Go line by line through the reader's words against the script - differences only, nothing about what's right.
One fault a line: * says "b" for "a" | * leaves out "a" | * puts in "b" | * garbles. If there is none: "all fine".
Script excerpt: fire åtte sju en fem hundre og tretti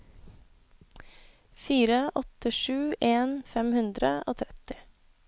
all fine